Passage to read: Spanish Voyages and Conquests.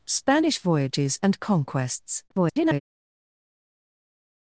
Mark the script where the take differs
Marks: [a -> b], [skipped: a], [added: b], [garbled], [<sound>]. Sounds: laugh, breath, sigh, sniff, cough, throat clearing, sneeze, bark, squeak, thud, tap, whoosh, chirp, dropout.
Spanish Voyages and Conquests. [garbled]